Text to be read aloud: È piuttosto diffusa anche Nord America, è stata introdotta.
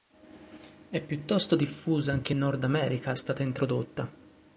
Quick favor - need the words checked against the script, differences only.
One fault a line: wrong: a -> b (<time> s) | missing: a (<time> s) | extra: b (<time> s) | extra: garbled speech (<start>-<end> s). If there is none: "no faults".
no faults